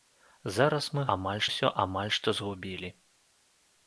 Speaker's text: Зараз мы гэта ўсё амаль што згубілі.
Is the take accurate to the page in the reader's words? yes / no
no